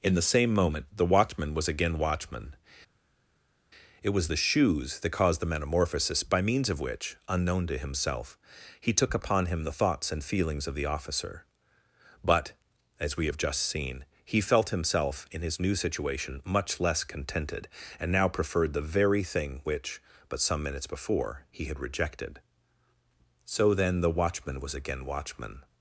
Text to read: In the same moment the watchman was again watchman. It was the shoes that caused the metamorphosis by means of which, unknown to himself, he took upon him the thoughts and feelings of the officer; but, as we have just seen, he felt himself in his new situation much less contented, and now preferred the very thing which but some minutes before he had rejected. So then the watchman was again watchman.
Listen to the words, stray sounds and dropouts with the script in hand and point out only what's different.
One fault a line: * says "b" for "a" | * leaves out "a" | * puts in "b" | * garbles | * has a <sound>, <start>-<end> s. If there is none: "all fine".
all fine